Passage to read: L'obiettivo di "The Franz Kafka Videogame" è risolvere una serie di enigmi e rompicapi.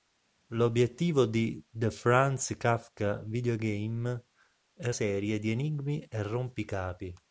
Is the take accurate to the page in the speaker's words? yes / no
no